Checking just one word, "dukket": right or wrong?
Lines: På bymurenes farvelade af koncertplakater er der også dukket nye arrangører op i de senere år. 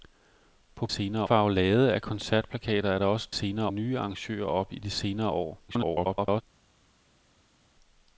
wrong